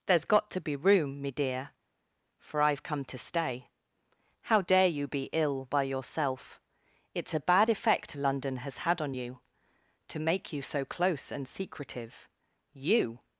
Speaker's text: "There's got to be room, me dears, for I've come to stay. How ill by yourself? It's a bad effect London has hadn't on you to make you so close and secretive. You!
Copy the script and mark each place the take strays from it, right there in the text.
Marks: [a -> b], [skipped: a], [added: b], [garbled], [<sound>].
"There's got to be room, me [dears, -> dear] for I've come to stay. How [added: dare you be] ill by yourself? It's a bad effect London has [hadn't -> had] on you to make you so close and secretive. You!